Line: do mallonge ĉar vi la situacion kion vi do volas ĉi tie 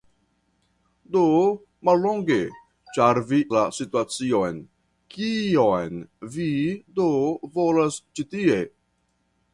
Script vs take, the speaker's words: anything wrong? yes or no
no